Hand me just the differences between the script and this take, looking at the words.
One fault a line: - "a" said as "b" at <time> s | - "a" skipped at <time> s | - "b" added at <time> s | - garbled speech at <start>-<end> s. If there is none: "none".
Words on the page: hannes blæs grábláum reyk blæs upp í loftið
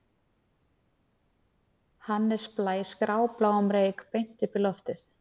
- "blæs" said as "beint" at 4.1 s